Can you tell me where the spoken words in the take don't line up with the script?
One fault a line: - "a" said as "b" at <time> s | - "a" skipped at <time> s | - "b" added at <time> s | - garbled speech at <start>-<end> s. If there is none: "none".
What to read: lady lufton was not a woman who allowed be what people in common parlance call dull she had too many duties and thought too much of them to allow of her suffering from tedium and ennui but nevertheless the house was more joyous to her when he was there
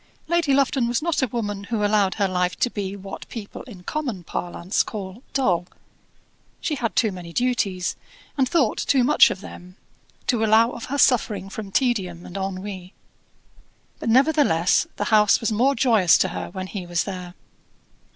- "her life to" added at 2.1 s